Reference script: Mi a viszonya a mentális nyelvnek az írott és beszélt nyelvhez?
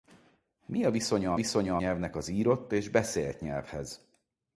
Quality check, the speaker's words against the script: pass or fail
fail